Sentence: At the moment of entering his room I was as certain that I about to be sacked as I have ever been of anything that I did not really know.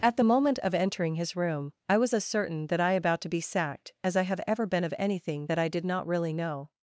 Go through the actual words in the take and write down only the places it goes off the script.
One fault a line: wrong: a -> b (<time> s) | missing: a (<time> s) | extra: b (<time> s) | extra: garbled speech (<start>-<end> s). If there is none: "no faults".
no faults